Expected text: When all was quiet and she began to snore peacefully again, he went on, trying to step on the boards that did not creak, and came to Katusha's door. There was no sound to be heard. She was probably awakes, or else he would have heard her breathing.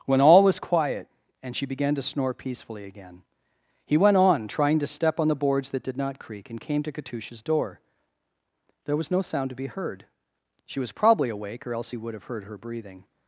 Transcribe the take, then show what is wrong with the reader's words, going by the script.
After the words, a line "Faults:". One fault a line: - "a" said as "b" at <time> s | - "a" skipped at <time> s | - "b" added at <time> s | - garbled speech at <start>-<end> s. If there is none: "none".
When all was quiet and she began to snore peacefully again, he went on, trying to step on the boards that did not creak, and came to Katusha's door. There was no sound to be heard. She was probably awake, or else he would have heard her breathing.
Faults:
- "awakes" said as "awake" at 11.3 s